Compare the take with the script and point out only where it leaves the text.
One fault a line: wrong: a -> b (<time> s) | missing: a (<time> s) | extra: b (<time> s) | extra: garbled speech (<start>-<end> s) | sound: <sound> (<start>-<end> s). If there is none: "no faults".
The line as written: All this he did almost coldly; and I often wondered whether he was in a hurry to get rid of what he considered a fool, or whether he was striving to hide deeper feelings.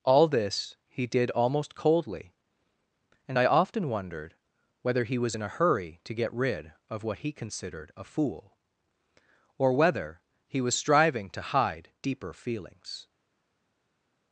no faults